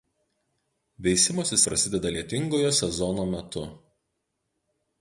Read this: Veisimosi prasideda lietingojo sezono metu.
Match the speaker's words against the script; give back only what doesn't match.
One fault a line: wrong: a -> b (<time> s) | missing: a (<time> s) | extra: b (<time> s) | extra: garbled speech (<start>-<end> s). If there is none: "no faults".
no faults